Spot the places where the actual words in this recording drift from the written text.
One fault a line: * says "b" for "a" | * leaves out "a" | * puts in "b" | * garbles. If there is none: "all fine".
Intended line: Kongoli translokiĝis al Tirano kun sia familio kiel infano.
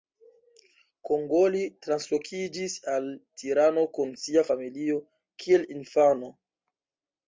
all fine